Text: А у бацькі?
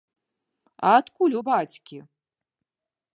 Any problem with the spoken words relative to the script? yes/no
yes